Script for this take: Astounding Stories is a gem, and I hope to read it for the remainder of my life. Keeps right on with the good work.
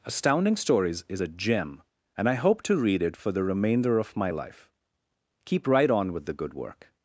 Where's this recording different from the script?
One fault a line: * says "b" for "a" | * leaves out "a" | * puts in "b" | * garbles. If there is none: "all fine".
* says "Keep" for "Keeps"